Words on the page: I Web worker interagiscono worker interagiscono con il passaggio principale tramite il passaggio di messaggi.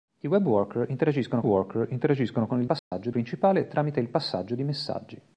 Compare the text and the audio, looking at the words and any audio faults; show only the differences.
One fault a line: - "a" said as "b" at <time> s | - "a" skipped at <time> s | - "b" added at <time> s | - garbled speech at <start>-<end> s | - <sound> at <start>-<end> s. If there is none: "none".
- dropout at 2.8-2.9 s